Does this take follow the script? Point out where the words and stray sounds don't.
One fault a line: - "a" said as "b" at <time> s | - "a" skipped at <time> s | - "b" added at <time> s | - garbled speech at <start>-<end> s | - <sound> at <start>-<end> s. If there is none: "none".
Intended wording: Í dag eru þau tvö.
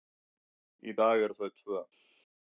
none